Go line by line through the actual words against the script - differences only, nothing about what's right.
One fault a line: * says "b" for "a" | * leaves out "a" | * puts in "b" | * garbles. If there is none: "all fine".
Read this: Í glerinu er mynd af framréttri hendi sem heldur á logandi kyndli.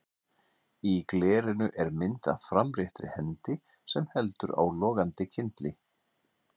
all fine